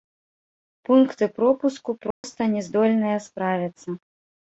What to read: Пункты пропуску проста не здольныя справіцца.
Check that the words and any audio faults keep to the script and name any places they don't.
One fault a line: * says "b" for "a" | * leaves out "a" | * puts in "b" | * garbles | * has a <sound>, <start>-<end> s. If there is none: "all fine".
* has a dropout, 2.1-2.2 s